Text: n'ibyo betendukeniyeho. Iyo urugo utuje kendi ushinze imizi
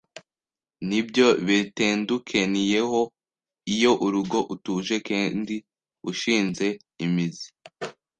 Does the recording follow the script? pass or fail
pass